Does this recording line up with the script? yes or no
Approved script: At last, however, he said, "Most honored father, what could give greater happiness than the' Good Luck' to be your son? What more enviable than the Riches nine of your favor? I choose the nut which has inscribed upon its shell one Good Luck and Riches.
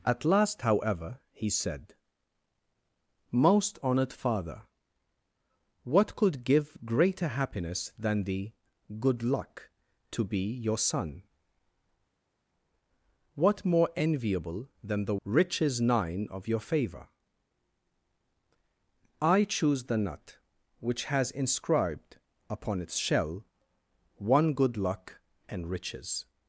yes